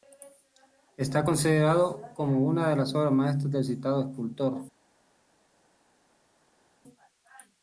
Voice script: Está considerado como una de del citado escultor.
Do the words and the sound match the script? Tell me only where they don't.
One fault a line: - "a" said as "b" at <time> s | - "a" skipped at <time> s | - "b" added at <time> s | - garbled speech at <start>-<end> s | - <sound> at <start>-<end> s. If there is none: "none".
- "las obras maestras" added at 2.8 s